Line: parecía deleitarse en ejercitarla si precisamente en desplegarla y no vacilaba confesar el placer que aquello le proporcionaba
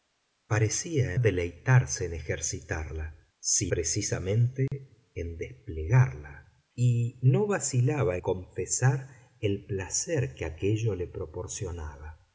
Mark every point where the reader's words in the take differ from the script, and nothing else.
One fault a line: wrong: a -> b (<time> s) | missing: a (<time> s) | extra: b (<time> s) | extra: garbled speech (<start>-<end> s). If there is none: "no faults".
no faults